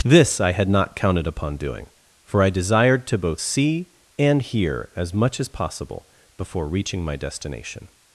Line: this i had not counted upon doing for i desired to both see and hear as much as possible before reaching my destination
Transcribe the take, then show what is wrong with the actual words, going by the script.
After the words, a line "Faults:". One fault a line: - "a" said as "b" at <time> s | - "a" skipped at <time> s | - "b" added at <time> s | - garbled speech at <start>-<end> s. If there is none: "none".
this i had not counted upon doing for i desired to both see and hear as much as possible before reaching my destination
Faults:
none